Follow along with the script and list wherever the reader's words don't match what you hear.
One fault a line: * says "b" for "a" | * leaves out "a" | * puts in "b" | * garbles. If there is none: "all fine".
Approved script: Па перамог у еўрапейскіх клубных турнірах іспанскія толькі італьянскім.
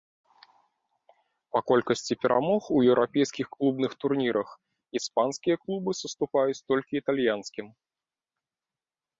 * puts in "колькасці"
* puts in "клубы саступаюць"